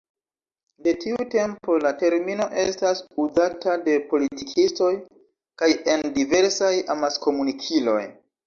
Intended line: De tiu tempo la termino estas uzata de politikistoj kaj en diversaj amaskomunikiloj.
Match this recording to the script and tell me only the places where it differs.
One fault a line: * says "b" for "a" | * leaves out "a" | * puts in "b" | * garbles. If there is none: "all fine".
all fine